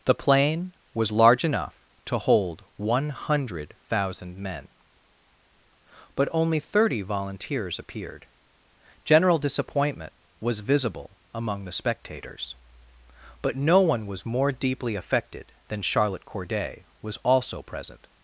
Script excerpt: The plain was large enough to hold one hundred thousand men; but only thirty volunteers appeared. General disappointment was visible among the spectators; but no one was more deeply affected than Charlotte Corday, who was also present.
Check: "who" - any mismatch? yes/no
yes